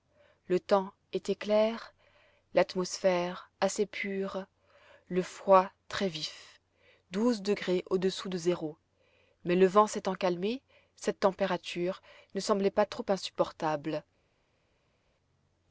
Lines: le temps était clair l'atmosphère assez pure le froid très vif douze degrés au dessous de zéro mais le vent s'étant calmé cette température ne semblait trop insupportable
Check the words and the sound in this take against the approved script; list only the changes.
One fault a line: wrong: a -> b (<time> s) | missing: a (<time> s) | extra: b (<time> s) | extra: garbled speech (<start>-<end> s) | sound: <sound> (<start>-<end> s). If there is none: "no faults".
extra: pas (12.7 s)